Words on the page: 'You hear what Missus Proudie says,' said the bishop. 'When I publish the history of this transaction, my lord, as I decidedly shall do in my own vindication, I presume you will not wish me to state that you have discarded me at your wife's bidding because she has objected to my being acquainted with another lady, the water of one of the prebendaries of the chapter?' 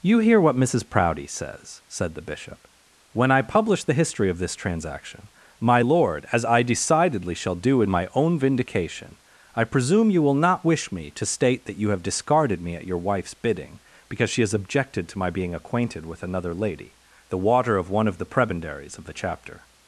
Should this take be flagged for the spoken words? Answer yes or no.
no